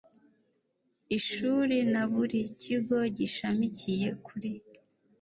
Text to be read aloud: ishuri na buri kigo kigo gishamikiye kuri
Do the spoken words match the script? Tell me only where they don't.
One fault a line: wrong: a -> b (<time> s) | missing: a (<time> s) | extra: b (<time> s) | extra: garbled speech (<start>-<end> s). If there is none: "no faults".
missing: kigo (3.0 s)